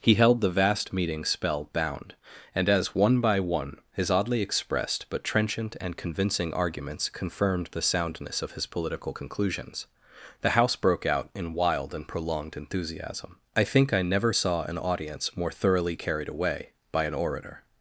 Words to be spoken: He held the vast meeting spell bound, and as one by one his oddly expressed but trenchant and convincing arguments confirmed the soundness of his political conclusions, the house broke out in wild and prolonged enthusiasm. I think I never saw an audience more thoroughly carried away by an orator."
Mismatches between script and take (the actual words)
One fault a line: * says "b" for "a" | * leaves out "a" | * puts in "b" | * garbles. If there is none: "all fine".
all fine